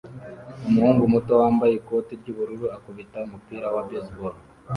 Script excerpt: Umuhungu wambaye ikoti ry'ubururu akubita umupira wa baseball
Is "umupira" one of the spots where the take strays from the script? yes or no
no